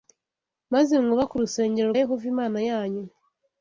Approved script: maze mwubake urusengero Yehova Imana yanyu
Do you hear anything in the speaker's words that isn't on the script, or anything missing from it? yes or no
no